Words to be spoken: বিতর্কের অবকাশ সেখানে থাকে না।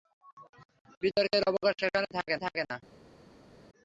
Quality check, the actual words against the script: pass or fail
fail